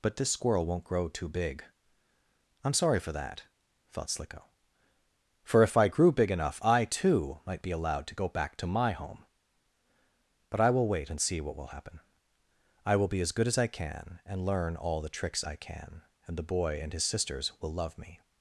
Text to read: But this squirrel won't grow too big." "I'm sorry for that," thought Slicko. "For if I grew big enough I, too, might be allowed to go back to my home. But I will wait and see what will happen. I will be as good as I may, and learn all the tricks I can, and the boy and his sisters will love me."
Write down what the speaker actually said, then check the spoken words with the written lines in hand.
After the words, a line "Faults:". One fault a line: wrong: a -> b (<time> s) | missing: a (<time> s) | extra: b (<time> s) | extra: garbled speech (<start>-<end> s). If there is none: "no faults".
But this squirrel won't grow too big." "I'm sorry for that," thought Slicko. "For if I grew big enough I, too, might be allowed to go back to my home. But I will wait and see what will happen. I will be as good as I can, and learn all the tricks I can, and the boy and his sisters will love me."
Faults:
wrong: may -> can (13.7 s)